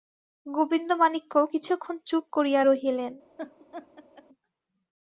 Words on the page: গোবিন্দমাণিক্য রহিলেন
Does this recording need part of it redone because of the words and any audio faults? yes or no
yes